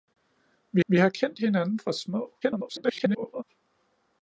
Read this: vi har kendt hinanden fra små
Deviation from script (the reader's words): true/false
true